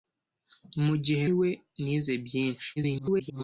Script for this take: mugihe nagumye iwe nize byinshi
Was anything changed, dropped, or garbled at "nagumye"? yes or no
yes